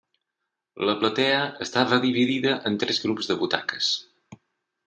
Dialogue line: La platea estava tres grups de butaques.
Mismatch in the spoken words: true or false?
true